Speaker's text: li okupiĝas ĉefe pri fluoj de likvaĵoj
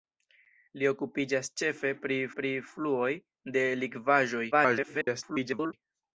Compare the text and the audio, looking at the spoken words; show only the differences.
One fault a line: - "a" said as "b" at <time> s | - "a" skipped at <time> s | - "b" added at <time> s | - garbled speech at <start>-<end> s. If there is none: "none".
- "pri" added at 2.4 s
- garbled speech at 4.5-5.7 s